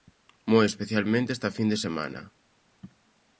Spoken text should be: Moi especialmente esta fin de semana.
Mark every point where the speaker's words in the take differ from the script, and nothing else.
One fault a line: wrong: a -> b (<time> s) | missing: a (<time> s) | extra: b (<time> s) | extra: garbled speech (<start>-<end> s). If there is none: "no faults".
no faults